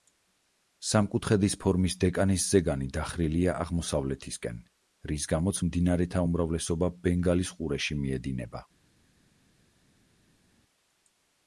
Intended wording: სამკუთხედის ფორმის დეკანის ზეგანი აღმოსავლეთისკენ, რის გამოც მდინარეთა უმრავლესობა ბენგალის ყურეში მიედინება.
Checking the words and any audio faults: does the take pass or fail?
fail